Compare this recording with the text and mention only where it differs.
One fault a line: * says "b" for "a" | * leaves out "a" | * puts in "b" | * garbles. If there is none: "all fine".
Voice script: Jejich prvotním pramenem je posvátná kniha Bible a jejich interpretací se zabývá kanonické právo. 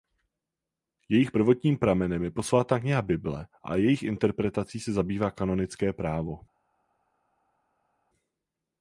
all fine